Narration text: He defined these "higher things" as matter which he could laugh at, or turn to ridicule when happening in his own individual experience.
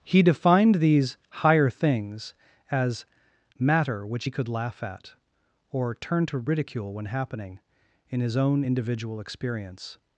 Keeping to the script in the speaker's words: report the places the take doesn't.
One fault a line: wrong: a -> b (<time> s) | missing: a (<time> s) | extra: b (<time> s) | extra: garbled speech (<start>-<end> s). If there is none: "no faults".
no faults